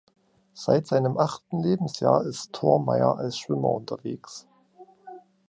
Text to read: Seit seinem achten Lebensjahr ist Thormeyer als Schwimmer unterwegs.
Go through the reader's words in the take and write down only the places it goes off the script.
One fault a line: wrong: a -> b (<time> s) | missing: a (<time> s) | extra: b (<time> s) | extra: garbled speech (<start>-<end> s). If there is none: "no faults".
no faults